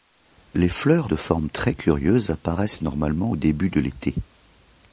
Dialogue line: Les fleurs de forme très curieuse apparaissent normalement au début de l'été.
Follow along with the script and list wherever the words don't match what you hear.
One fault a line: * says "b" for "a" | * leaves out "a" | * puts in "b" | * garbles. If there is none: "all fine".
all fine